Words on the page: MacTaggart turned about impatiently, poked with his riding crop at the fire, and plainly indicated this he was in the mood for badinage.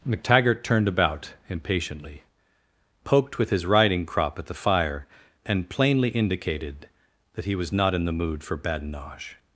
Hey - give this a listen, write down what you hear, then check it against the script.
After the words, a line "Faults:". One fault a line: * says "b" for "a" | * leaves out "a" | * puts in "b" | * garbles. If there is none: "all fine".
MacTaggart turned about impatiently, poked with his riding crop at the fire, and plainly indicated that he was not in the mood for badinage.
Faults:
* says "that" for "this"
* puts in "not"